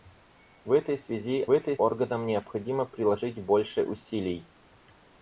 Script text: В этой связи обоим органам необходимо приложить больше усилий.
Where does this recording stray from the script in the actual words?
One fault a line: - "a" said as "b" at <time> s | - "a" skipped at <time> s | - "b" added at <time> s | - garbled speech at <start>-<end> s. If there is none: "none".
- "обоим" said as "этой" at 1.5 s